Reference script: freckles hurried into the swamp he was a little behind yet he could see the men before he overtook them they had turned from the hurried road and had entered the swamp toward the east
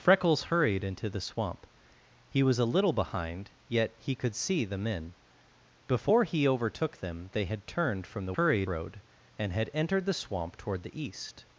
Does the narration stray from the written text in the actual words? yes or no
no